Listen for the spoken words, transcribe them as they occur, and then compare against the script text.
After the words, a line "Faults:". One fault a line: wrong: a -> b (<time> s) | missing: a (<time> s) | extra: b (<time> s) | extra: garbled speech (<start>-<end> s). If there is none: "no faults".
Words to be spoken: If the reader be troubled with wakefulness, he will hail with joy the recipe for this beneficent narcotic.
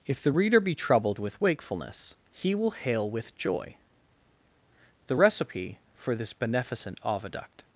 If the reader be troubled with wakefulness, he will hail with joy the recipe for this beneficent oviduct.
Faults:
wrong: narcotic -> oviduct (7.0 s)